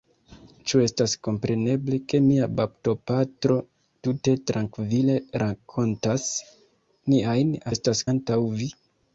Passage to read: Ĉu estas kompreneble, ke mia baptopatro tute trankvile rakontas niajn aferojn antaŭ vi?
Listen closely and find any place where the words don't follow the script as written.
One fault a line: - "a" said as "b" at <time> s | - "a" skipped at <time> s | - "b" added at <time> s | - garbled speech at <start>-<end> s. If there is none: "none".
- "aferojn" said as "estas" at 7.7 s